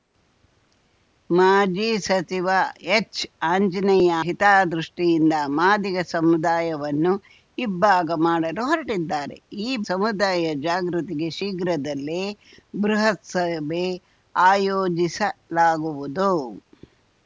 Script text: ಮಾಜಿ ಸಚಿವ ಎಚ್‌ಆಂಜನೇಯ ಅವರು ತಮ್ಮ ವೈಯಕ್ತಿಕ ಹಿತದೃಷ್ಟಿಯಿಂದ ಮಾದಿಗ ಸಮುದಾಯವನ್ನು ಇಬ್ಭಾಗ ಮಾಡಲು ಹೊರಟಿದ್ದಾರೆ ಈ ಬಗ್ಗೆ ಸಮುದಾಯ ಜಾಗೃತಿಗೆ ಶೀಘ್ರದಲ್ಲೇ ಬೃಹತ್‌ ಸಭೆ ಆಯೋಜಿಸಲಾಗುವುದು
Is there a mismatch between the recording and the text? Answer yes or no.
yes